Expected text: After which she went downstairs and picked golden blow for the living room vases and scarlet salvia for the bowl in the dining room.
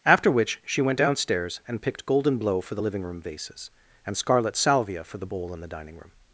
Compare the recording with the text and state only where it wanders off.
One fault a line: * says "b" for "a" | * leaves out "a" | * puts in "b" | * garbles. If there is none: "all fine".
all fine